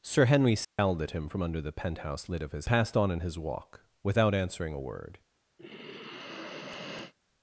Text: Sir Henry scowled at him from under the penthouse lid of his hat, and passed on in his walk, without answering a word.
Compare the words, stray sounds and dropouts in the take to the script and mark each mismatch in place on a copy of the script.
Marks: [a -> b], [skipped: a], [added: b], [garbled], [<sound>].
Sir Henry scowled [dropout] at him from under the penthouse lid of his [skipped: hat, and] passed on in his walk, without answering a word. [sigh]